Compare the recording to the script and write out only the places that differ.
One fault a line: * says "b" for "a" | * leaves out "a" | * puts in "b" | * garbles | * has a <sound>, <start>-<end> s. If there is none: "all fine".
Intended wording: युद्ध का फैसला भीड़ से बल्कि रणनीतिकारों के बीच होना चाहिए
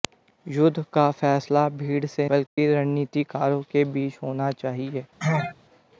* has a dropout, 2.5-2.6 s
* has a sneeze, 5.2-5.6 s